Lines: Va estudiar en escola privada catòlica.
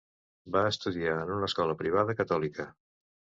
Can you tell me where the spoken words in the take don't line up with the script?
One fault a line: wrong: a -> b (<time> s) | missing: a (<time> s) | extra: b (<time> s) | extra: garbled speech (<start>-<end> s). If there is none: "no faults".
extra: una (1.4 s)